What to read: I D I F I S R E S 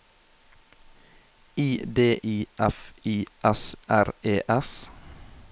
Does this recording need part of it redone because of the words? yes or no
no